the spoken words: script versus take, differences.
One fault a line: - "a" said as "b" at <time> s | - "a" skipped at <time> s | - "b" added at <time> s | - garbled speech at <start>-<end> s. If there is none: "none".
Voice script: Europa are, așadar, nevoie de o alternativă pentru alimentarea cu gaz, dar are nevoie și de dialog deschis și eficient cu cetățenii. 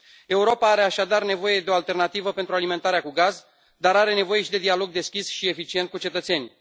none